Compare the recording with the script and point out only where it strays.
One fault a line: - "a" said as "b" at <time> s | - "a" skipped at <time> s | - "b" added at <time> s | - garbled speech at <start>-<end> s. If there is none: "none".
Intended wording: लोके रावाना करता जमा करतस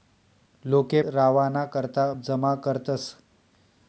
none